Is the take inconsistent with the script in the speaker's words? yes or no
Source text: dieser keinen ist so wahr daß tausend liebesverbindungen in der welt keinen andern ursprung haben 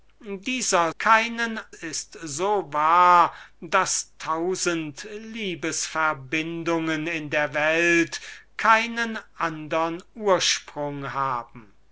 no